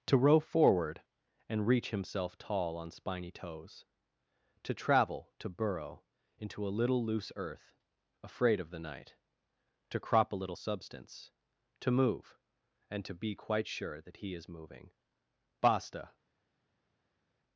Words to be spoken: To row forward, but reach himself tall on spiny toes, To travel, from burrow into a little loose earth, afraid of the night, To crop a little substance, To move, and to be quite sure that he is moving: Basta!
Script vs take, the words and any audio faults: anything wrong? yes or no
yes